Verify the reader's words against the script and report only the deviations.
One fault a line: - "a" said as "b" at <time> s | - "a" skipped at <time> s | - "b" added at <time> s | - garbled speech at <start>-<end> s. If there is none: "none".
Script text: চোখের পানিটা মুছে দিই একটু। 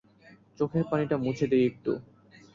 none